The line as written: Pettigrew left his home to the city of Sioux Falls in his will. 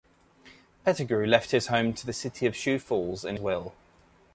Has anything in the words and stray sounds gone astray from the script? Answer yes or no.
yes